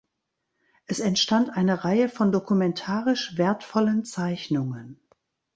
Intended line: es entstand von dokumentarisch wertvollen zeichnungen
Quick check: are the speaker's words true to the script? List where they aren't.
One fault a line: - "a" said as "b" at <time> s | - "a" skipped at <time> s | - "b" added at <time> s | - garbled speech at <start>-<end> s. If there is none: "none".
- "eine reihe" added at 1.5 s